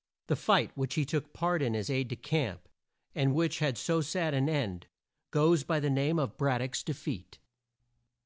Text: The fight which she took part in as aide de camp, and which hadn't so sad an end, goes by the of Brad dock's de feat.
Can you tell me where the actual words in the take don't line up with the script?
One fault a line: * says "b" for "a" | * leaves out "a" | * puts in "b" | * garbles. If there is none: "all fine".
* says "he" for "she"
* says "had" for "hadn't"
* puts in "name"